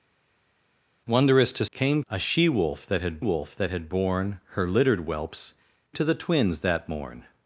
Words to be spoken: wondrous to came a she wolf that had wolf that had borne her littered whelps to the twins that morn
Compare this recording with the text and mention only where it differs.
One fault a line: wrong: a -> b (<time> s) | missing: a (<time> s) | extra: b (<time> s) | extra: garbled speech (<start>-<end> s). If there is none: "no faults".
no faults